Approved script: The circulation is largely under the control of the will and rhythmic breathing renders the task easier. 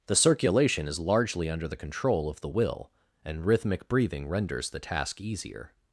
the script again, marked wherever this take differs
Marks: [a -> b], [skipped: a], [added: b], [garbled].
The circulation is largely under the control of the will and rhythmic breathing renders the task easier.